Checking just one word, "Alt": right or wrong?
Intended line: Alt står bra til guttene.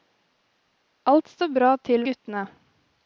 right